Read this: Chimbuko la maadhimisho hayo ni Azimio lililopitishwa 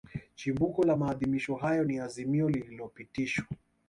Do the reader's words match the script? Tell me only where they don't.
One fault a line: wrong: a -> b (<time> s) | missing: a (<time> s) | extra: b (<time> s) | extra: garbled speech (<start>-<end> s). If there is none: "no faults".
no faults